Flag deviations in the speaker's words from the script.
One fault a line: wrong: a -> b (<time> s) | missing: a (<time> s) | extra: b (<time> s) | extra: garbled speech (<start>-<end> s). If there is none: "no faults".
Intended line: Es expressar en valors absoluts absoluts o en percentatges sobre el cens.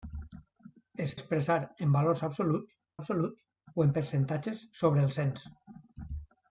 no faults